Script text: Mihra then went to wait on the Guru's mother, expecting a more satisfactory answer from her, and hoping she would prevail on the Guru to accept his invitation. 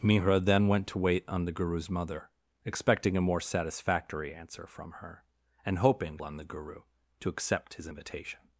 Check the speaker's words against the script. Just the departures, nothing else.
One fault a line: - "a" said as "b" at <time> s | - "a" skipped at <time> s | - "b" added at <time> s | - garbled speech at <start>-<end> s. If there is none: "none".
- "she would prevail" skipped at 6.2 s